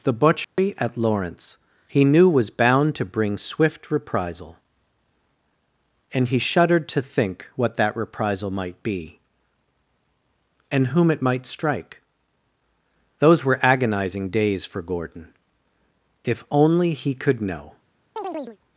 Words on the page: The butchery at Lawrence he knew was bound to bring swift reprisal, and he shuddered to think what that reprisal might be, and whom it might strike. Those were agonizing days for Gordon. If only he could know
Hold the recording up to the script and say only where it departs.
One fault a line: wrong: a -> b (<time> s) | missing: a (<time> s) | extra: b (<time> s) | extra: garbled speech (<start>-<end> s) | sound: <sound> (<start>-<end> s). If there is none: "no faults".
sound: dropout (0.4-0.6 s)
sound: chirp (18.2-18.6 s)